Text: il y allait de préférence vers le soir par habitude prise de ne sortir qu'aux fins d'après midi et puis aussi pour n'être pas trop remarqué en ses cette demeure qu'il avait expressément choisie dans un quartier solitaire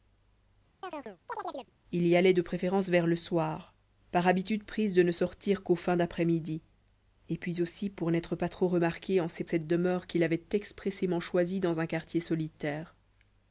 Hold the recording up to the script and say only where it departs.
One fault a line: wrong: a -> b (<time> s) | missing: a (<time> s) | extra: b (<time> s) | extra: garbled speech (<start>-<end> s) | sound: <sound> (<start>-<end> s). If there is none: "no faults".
sound: chirp (0.8-1.7 s)